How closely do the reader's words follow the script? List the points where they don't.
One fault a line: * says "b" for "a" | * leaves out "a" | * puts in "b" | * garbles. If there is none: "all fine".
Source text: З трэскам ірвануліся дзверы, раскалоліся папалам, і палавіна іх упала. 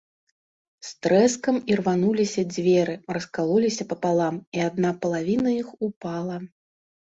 * puts in "адна"